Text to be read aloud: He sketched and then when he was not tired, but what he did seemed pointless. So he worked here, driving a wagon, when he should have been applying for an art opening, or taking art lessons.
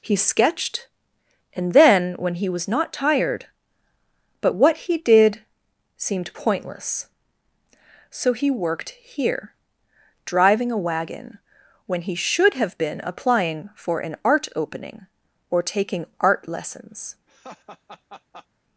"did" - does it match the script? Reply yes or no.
yes